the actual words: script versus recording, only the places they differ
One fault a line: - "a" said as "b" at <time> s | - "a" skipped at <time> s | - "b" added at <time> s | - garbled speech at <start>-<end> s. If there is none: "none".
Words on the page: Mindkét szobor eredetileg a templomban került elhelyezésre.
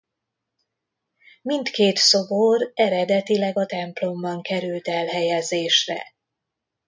none